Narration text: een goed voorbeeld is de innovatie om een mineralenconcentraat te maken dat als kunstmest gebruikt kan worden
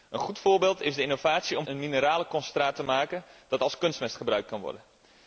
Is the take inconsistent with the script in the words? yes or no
no